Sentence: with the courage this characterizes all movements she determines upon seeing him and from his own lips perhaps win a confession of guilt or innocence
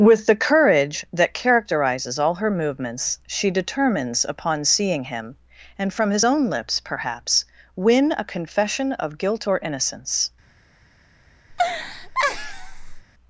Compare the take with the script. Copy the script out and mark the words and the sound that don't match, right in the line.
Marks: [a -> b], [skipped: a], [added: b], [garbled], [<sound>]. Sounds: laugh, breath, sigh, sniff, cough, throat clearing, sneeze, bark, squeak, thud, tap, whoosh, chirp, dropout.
with the courage [this -> that] characterizes all [added: her] movements she determines upon seeing him and from his own lips perhaps win a confession of guilt or innocence [laugh]